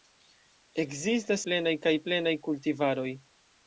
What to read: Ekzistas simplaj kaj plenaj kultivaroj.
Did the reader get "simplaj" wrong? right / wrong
wrong